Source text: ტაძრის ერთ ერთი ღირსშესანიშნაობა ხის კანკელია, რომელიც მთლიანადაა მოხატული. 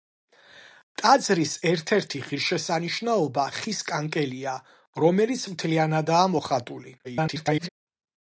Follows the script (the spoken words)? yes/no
no